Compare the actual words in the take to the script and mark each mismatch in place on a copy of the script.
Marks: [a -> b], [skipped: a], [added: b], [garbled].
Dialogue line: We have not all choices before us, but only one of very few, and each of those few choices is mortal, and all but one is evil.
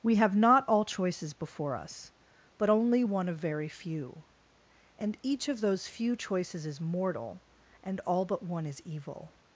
We have not all choices before us, but only one of very few, and each of those few choices is mortal, and all but one is evil.